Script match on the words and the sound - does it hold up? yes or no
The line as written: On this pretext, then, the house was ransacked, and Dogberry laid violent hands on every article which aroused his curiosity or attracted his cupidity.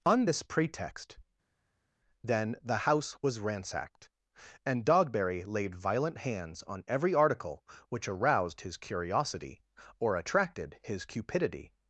yes